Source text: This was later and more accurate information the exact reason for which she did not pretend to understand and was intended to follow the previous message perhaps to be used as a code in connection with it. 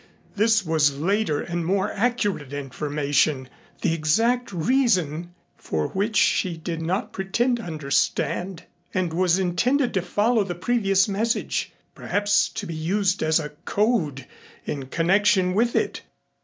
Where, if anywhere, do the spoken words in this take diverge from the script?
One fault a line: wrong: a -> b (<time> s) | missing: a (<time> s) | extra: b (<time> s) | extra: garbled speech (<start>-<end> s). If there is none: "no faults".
no faults